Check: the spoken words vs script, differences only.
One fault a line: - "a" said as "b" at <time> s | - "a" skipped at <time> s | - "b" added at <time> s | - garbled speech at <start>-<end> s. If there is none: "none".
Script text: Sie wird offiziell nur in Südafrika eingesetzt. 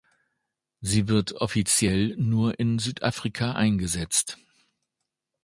none